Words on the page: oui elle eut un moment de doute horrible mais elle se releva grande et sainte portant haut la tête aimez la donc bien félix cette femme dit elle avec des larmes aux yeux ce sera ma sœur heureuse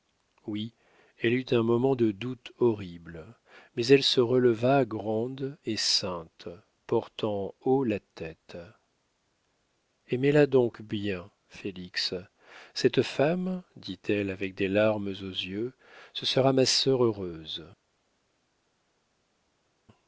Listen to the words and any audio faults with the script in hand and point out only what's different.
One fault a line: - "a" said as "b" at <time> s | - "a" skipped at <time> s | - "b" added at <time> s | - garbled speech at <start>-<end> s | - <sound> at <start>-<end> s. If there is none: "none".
none